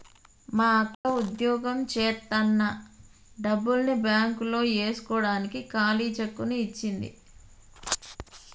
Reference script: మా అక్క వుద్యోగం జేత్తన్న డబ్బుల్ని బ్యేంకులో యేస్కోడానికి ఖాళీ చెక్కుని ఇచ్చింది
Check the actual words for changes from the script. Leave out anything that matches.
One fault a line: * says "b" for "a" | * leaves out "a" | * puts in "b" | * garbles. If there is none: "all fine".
all fine